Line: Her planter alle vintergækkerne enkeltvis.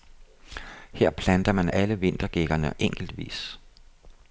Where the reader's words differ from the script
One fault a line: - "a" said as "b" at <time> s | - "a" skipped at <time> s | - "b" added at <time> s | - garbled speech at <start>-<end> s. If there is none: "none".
- "man" added at 1.5 s